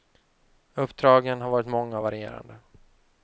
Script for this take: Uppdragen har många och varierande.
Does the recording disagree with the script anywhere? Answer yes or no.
yes